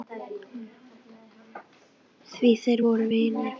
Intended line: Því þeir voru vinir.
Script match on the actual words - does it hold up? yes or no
yes